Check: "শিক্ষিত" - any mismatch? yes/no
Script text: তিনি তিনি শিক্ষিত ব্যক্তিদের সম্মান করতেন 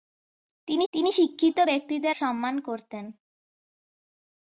no